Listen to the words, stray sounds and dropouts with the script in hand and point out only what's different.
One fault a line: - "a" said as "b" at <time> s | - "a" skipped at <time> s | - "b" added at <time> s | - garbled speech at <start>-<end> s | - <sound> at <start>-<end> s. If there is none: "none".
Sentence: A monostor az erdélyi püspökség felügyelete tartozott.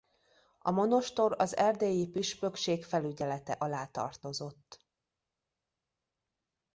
- "alá" added at 3.5 s